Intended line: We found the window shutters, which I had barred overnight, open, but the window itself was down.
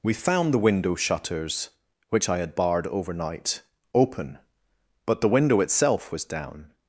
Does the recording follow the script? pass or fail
pass